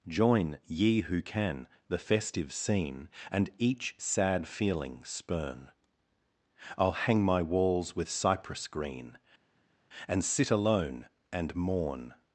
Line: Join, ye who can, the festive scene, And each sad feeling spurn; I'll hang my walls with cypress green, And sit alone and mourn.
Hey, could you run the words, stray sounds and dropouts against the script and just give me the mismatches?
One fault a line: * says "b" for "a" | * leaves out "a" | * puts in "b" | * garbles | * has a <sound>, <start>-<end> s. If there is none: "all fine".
all fine